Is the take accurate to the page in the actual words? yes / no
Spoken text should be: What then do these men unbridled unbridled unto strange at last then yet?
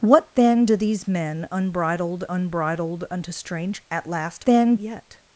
yes